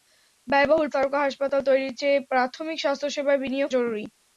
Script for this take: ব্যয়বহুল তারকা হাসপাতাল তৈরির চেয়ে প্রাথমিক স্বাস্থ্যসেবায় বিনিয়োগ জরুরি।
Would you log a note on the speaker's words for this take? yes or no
no